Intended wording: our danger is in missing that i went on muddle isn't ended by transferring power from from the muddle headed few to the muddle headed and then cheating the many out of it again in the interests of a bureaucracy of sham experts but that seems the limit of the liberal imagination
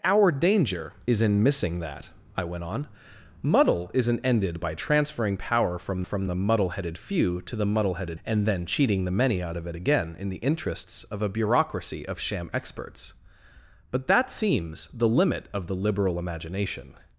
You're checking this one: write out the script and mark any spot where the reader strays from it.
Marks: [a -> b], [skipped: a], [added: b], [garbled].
our danger is in missing that i went on muddle isn't ended by transferring power from from the muddle headed few to the muddle headed and then cheating the many out of it again in the interests of a bureaucracy of sham experts but that seems the limit of the liberal imagination